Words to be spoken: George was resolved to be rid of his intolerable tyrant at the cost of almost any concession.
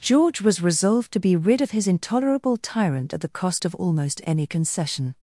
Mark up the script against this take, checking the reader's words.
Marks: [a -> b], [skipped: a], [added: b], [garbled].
George was resolved to be rid of his intolerable tyrant at the cost of almost any concession.